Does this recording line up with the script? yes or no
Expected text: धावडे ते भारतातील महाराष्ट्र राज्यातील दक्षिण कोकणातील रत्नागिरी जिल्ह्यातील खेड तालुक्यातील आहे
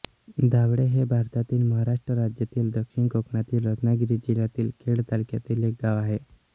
no